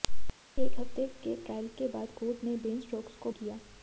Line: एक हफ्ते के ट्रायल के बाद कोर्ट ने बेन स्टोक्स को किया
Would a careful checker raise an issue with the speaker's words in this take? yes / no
no